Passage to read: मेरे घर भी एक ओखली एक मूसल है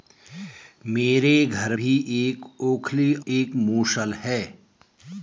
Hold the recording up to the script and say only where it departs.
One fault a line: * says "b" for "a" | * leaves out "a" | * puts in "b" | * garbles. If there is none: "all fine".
all fine